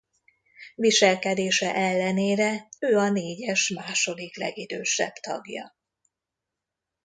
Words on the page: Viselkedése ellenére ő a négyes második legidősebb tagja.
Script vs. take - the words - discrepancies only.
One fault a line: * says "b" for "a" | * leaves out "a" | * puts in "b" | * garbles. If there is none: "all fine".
all fine